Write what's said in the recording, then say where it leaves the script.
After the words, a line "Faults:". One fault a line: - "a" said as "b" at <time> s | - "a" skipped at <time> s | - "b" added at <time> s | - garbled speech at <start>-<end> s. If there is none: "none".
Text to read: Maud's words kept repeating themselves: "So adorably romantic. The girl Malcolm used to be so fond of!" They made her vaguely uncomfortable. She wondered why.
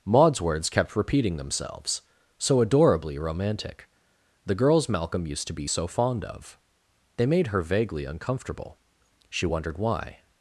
Maud's words kept repeating themselves: "So adorably romantic. The girls Malcolm used to be so fond of!" They made her vaguely uncomfortable. She wondered why.
Faults:
- "girl" said as "girls" at 4.5 s